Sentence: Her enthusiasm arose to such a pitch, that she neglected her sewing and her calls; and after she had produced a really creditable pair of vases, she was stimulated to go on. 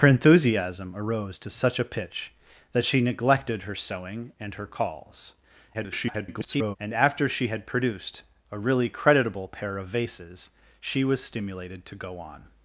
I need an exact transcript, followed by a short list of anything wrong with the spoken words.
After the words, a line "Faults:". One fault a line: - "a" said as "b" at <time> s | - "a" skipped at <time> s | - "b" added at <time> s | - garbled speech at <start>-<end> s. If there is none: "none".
Her enthusiasm arose to such a pitch, that she neglected her sewing and her calls; [garbled] and after she had produced a really creditable pair of vases, she was stimulated to go on.
Faults:
- garbled speech at 5.7-6.8 s